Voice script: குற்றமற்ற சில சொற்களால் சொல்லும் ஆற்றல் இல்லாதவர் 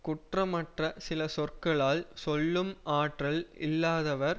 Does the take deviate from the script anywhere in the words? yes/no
no